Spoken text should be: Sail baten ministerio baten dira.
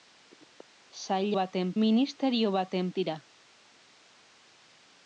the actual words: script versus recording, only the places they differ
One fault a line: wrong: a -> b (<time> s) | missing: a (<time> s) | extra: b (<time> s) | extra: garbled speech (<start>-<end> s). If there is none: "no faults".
no faults